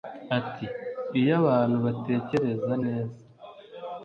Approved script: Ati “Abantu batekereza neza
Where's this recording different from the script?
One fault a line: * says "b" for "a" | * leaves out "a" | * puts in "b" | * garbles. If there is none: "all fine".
* puts in "Iyo"